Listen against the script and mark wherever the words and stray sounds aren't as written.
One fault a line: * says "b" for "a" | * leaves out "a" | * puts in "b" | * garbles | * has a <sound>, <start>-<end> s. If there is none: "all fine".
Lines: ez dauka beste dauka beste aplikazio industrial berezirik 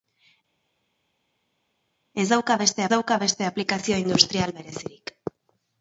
all fine